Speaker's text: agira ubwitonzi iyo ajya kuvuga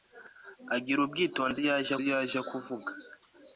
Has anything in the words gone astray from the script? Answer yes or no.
yes